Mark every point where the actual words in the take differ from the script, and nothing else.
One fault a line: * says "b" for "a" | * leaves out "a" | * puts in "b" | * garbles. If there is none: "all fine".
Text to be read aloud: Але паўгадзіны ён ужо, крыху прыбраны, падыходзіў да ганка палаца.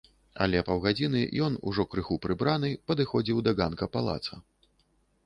all fine